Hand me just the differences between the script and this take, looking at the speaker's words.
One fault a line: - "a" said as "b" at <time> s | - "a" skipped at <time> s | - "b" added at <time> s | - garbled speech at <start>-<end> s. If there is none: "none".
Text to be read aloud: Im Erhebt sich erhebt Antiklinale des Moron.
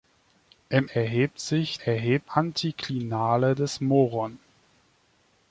none